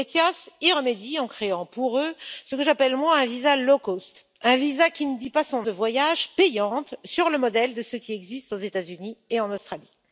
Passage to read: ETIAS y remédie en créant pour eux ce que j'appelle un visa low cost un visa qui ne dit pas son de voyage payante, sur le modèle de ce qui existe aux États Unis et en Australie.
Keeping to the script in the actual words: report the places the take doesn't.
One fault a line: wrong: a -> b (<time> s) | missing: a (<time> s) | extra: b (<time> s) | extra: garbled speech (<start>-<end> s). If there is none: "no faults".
no faults